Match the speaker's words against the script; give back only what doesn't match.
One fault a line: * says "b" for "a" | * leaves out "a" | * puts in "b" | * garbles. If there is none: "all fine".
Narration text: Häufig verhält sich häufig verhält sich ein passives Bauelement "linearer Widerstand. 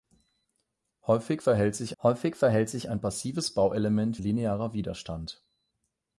all fine